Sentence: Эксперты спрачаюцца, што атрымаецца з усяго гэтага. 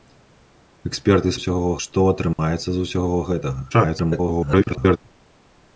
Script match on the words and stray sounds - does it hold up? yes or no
no